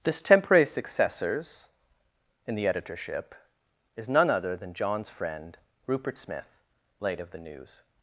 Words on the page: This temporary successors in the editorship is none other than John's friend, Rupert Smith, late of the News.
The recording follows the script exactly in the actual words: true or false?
true